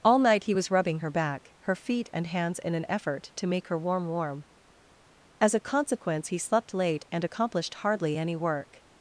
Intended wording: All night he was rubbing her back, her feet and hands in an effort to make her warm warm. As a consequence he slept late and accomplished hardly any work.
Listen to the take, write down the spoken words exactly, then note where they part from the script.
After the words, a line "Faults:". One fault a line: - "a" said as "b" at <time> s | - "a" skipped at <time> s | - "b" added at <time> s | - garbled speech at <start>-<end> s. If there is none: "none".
All night he was rubbing her back, her feet and hands in an effort to make her warm warm. As a consequence he slept late and accomplished hardly any work.
Faults:
none